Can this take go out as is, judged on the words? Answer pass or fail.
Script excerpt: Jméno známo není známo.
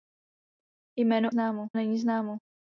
pass